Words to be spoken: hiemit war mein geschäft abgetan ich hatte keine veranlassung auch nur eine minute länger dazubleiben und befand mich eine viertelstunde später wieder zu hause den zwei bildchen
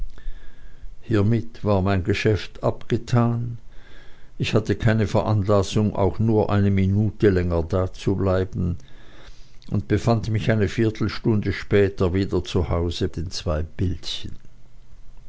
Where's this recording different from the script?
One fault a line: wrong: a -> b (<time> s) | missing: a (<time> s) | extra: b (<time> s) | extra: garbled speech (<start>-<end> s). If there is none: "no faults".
no faults